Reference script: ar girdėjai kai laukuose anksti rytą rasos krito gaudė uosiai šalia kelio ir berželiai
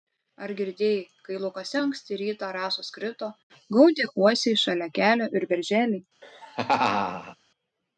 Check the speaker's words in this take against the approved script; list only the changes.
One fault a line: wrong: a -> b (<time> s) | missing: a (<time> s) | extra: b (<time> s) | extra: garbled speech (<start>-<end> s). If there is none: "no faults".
no faults